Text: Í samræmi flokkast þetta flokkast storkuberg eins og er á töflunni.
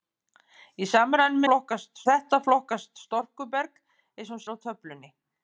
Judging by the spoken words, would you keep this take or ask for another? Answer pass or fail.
pass